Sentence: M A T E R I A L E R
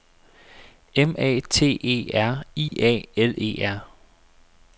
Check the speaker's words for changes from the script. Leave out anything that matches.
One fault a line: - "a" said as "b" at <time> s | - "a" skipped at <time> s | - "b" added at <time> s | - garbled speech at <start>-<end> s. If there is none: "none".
none